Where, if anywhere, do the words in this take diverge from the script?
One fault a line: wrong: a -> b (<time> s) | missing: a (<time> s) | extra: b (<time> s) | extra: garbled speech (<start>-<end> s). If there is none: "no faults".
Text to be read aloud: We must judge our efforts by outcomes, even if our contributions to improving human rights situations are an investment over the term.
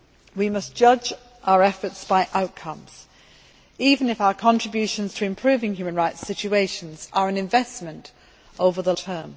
no faults